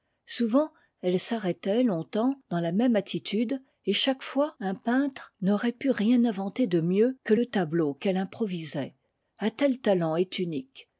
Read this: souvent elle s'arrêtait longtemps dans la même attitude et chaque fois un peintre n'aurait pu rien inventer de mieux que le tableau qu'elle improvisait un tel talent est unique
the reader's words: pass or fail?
pass